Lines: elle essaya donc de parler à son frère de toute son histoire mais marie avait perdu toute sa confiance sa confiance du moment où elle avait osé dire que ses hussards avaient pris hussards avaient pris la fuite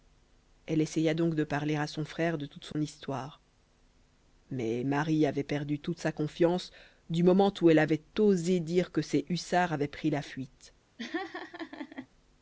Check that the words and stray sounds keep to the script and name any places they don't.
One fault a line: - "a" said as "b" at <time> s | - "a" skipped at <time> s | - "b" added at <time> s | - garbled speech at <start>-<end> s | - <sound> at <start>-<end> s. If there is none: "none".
- dropout at 2.7-2.7 s
- "sa confiance" skipped at 6.7 s
- "hussards avaient pris" skipped at 10.1 s
- laugh at 11.0-12.1 s